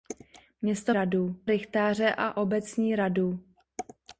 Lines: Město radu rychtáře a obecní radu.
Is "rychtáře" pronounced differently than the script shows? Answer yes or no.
no